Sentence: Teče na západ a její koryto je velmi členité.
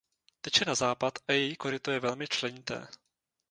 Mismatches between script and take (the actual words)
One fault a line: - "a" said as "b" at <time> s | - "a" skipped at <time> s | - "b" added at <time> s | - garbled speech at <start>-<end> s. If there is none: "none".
none